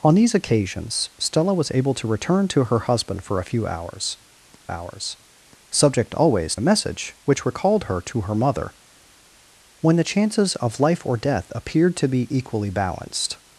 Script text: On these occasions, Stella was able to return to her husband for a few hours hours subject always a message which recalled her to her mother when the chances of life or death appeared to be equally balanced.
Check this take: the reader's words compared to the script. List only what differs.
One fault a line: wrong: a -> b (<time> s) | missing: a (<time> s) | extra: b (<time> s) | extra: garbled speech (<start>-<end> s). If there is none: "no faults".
no faults